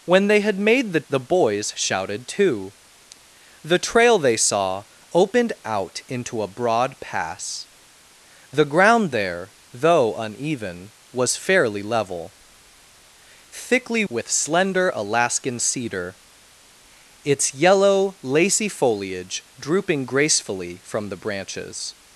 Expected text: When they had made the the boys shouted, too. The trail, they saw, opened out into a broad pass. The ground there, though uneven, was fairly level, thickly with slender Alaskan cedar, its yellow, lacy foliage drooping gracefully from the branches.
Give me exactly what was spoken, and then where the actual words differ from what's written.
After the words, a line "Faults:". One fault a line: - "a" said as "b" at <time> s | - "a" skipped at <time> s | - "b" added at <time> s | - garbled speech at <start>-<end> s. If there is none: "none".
When they had made the the boys shouted, too. The trail, they saw, opened out into a broad pass. The ground there, though uneven, was fairly level, thickly with slender Alaskan cedar, its yellow, lacy foliage drooping gracefully from the branches.
Faults:
none